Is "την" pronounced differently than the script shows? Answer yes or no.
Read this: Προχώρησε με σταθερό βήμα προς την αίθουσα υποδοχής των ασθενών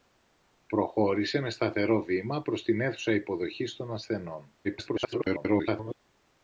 no